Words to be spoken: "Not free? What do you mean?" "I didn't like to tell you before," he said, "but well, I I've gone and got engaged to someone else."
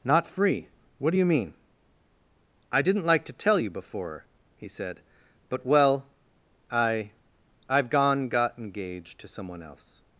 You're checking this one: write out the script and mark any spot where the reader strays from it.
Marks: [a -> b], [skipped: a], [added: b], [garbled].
"Not free? What do you mean?" "I didn't like to tell you before," he said, "but well, I I've gone [skipped: and] got engaged to someone else."